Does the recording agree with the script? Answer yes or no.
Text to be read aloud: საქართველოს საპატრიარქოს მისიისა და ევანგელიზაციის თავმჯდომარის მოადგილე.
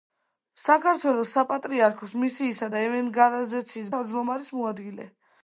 yes